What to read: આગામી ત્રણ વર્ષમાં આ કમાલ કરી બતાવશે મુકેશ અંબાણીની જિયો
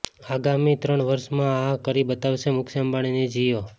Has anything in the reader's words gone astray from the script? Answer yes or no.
yes